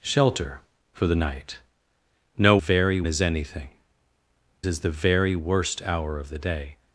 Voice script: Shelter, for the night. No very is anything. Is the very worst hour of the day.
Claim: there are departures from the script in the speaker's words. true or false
false